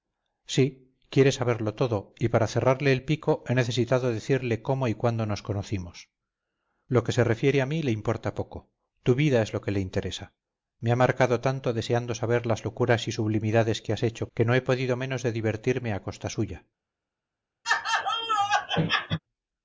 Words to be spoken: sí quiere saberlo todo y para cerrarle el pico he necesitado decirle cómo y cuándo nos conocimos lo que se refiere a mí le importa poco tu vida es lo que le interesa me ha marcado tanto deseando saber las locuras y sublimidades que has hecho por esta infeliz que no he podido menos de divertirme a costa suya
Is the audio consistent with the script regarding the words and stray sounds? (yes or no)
no